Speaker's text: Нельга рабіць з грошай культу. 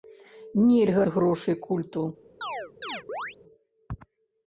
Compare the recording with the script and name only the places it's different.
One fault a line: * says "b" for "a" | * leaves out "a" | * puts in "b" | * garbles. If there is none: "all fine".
* leaves out "рабіць"